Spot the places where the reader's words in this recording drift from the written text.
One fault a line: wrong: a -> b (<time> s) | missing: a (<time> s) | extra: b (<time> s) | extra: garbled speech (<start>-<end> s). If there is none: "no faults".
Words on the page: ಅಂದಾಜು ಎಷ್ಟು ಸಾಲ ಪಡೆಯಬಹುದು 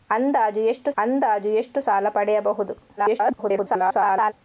extra: ಅಂದಾಜು ಎಷ್ಟು (1.0 s)
extra: garbled speech (3.0-4.3 s)